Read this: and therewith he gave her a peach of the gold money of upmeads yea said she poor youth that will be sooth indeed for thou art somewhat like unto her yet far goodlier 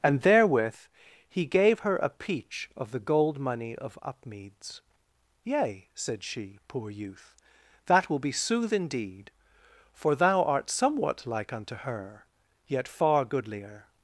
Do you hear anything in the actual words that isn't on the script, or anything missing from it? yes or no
no